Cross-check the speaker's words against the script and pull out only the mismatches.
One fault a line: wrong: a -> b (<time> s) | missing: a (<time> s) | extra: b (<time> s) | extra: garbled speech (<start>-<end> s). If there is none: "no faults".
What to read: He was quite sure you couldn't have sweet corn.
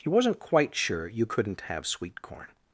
wrong: was -> wasn't (0.1 s)